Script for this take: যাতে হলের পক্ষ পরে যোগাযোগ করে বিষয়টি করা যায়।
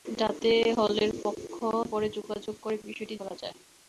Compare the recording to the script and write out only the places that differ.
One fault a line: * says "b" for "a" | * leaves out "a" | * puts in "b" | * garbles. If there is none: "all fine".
all fine